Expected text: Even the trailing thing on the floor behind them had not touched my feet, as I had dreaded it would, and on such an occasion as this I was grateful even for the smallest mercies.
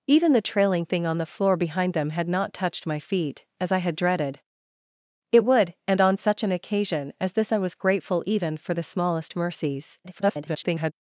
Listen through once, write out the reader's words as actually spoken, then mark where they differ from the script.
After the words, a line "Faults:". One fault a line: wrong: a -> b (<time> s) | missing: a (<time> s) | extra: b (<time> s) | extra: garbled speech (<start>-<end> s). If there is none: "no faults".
Even the trailing thing on the floor behind them had not touched my feet, as I had dreaded it would, and on such an occasion as this I was grateful even for the smallest mercies. [garbled]
Faults:
extra: garbled speech (10.0-10.9 s)